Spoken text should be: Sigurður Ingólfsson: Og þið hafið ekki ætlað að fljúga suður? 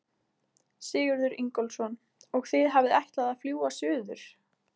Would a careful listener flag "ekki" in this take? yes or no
yes